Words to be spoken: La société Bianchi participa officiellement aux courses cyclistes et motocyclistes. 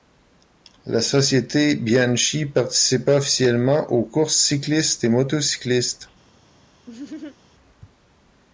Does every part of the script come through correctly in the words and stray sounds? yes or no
no